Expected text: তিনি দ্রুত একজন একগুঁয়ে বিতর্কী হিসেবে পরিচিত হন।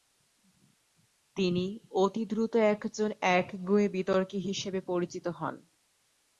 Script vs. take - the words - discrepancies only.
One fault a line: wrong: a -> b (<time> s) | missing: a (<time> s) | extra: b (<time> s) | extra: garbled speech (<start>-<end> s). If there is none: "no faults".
extra: অতি (1.9 s)